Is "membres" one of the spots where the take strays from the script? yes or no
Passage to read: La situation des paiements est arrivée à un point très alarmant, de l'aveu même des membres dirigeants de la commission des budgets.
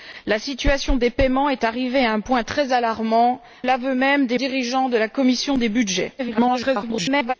yes